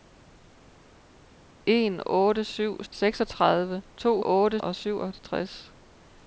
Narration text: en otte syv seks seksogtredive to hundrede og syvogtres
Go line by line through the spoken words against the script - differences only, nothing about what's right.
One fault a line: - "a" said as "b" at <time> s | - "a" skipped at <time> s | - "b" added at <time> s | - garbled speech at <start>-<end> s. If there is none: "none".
- "seks" skipped at 2.8 s
- "hundrede" said as "otte" at 4.2 s